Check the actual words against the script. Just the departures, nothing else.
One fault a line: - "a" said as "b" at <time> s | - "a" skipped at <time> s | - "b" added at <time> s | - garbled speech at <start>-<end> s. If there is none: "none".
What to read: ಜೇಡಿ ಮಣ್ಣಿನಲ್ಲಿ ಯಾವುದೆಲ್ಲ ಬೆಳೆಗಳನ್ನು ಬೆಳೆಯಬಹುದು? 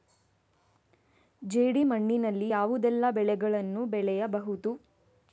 none